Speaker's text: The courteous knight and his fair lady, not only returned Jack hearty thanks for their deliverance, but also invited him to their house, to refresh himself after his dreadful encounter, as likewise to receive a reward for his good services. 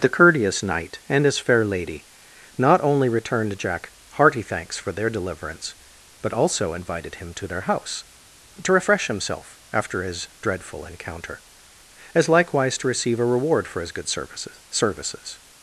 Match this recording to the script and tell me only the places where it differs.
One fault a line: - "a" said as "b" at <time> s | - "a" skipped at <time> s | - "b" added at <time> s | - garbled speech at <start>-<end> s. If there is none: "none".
- "services" added at 14.7 s